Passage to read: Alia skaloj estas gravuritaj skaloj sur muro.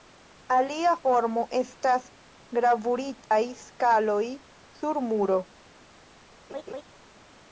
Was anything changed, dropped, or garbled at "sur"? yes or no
no